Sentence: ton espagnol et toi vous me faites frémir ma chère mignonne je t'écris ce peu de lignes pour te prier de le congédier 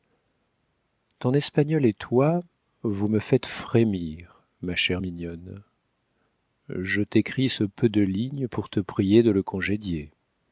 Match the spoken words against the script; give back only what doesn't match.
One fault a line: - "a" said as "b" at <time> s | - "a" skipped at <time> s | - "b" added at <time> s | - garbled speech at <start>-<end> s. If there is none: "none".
none